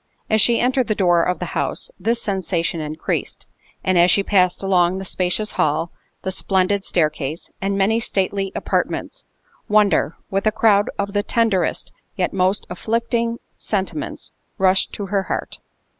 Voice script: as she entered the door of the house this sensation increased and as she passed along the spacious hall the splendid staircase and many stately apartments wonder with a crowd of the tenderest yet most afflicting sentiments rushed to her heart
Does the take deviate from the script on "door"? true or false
false